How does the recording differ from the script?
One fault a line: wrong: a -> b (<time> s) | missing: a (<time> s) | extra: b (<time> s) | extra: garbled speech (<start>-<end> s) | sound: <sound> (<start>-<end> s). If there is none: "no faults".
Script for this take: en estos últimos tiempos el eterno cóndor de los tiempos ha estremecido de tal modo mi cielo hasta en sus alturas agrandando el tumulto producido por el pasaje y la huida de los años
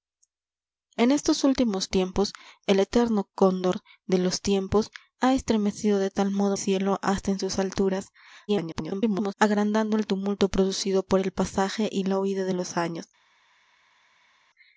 missing: mi (6.6 s)
extra: garbled speech (8.5-9.3 s)